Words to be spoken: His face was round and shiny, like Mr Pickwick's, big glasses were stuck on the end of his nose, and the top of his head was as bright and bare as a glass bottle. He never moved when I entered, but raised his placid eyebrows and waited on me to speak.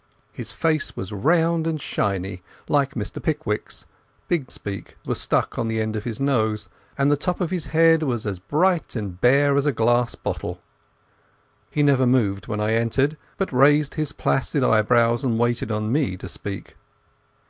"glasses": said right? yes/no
no